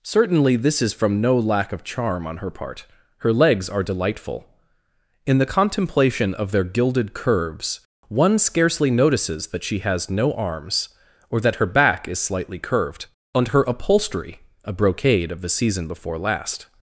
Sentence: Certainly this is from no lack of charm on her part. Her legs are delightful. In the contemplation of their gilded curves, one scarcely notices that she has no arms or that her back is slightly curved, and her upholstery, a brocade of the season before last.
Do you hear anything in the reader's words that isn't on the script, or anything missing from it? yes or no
no